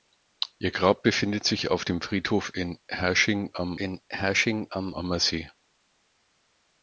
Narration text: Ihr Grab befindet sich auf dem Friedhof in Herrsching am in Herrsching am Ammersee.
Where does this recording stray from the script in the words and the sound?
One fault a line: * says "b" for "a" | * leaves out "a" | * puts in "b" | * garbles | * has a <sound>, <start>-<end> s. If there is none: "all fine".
all fine